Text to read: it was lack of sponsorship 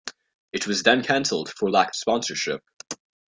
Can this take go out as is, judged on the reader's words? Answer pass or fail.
fail